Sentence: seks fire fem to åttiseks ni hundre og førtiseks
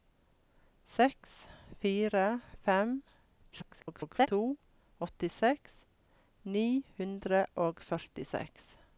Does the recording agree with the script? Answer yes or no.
no